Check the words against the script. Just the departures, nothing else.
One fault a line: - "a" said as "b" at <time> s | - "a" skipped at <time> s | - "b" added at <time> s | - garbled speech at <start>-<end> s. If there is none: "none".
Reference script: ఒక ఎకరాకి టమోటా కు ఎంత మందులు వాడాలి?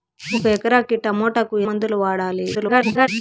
- "ఎంత" skipped at 1.6 s
- garbled speech at 2.5-3.1 s